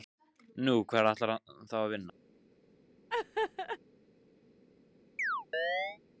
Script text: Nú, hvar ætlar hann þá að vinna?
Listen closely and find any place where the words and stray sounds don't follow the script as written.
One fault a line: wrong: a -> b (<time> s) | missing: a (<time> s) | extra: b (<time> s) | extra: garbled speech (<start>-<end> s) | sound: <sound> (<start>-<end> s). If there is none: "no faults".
sound: laugh (3.1-3.8 s)
sound: chirp (5.2-6.0 s)